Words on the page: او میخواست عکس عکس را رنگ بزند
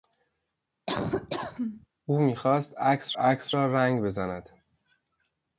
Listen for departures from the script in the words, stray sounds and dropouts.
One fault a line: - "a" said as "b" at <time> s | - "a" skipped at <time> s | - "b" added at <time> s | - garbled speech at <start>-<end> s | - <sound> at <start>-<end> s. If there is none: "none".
- laugh at 0.9-1.9 s